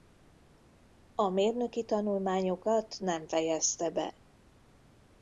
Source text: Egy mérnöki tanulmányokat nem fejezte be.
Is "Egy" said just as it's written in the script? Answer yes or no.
no